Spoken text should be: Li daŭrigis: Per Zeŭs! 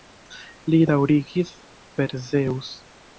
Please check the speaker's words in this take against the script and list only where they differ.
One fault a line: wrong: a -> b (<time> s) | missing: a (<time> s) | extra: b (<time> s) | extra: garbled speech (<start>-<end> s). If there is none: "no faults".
no faults